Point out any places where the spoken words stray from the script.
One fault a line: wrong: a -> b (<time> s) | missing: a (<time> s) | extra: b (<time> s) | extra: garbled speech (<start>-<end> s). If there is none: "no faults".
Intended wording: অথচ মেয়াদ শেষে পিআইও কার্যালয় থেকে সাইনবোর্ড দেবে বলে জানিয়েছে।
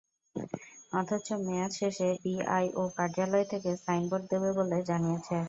no faults